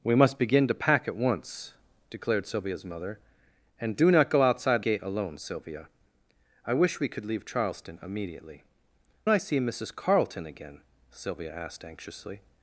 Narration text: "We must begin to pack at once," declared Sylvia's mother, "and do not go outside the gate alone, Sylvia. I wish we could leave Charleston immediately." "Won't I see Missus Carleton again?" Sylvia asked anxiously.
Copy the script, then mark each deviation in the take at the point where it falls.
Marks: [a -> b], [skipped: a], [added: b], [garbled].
"We must begin to pack at once," declared Sylvia's mother, "and do not go outside [skipped: the] gate alone, Sylvia. I wish we could leave Charleston immediately." [skipped: "Won't] I see Missus Carleton again?" Sylvia asked anxiously.